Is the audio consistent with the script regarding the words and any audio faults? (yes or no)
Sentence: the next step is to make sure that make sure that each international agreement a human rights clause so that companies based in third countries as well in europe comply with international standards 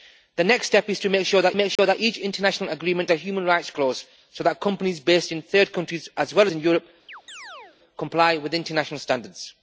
no